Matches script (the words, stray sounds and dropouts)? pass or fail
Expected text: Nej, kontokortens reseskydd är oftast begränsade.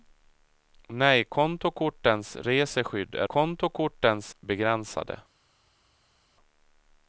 fail